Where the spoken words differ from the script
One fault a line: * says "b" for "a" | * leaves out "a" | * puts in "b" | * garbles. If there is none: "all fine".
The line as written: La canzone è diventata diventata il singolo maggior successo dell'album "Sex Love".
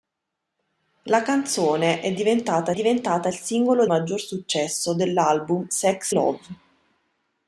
all fine